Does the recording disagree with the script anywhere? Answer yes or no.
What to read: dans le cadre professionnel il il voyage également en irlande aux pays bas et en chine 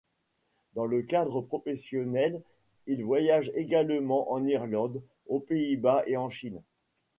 yes